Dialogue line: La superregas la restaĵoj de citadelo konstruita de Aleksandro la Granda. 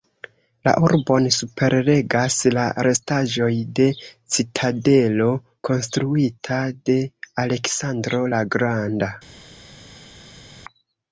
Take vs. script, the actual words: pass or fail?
fail